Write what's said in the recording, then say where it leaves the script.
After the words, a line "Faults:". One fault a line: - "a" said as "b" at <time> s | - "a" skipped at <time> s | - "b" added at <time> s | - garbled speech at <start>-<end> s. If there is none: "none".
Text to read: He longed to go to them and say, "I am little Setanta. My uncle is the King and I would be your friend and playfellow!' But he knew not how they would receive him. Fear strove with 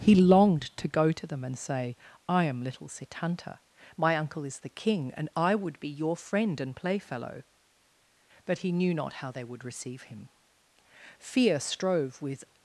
He longed to go to them and say, "I am little Setanta. My uncle is the King and I would be your friend and playfellow!' But he knew not how they would receive him. Fear strove with
Faults:
none